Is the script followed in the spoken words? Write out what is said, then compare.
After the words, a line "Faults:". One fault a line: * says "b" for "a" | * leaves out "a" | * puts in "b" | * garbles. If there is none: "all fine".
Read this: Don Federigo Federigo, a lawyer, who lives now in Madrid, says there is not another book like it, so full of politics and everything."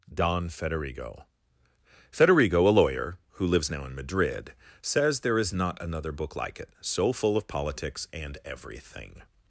Don Federigo Federigo, a lawyer, who lives now in Madrid, says there is not another book like it, so full of politics and everything."
Faults:
all fine